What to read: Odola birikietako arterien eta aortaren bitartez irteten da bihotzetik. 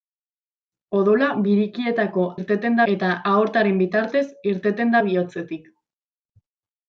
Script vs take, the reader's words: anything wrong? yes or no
yes